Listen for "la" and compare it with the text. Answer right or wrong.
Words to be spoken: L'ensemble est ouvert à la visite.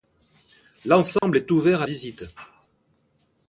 wrong